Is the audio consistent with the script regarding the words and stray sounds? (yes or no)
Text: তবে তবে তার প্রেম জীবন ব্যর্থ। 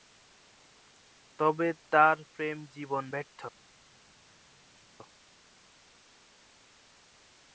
no